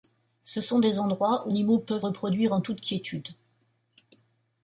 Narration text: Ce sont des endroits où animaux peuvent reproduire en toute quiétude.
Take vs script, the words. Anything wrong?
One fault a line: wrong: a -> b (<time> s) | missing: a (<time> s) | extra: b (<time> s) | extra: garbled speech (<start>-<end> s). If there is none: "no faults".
no faults